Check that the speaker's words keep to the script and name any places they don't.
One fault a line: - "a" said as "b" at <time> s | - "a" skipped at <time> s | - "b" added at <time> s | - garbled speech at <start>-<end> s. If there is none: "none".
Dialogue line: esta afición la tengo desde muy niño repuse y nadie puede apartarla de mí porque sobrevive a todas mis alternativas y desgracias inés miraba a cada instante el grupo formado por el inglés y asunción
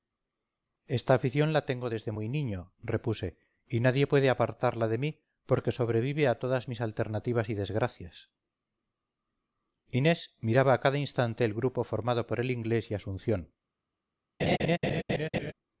none